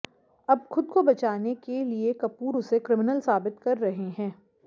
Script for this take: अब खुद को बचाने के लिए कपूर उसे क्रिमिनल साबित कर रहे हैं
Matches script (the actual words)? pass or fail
pass